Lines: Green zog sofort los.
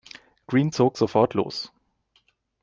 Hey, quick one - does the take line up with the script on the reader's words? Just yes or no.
yes